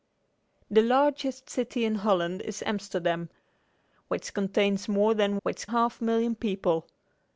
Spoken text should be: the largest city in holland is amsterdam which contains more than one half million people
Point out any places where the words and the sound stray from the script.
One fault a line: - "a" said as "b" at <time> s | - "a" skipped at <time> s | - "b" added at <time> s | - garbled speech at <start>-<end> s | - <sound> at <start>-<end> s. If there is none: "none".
- "one" said as "which" at 5.4 s